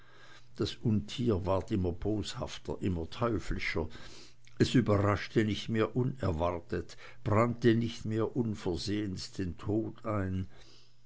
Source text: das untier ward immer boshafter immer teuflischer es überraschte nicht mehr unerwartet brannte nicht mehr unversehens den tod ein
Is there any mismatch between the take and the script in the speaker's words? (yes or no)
no